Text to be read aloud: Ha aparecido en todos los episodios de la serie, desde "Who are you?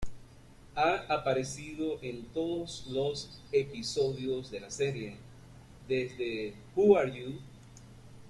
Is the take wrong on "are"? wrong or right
right